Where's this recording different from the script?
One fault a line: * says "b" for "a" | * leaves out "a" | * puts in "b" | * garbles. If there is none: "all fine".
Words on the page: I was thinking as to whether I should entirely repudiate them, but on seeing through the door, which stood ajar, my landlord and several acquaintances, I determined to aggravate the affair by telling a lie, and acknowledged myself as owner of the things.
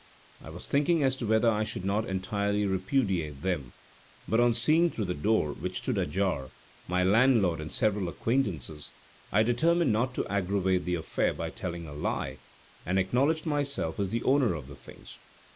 * puts in "not"
* puts in "not"
* puts in "the"